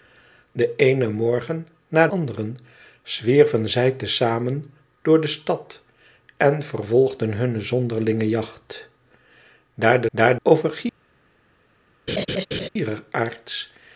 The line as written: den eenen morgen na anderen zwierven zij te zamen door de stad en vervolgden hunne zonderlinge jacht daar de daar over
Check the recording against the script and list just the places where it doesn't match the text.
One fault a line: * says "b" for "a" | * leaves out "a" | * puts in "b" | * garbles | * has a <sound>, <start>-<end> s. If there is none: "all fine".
* has a laugh, 12.1-12.7 s